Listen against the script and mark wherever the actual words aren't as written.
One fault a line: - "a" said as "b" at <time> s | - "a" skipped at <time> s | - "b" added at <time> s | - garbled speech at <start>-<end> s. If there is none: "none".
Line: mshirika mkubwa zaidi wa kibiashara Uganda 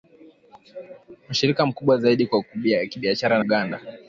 none